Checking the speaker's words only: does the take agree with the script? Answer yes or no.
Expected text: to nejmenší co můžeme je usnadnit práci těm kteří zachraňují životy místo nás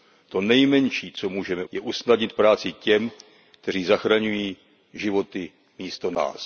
yes